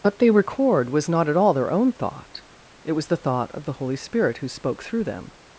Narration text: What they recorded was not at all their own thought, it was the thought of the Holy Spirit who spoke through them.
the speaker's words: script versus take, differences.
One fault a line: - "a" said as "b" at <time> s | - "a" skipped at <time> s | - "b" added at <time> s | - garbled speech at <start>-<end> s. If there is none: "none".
- "recorded" said as "record" at 0.3 s